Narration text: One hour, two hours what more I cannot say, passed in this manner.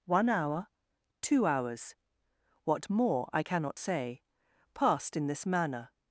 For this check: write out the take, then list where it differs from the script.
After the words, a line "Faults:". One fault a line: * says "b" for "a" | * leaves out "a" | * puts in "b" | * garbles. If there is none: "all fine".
One hour, two hours what more I cannot say, passed in this manner.
Faults:
all fine